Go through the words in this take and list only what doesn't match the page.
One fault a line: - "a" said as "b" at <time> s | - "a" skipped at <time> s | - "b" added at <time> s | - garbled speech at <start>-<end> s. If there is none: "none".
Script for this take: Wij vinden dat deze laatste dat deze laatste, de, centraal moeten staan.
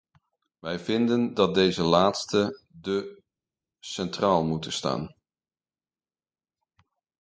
- "dat deze laatste" skipped at 2.6 s